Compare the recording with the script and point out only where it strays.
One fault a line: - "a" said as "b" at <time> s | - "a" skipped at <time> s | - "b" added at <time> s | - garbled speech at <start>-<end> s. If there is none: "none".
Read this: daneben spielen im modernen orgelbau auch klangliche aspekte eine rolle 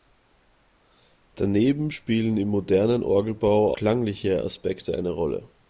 - "auch" skipped at 3.8 s